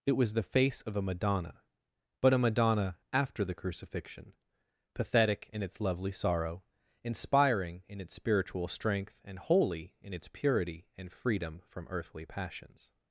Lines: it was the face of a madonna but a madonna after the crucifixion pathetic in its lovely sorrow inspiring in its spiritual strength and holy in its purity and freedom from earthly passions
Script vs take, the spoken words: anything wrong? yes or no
no